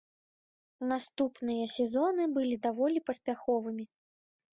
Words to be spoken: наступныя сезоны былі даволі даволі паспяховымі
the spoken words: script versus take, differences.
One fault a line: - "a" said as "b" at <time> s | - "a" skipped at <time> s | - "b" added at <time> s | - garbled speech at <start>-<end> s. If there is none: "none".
- "даволі" skipped at 3.0 s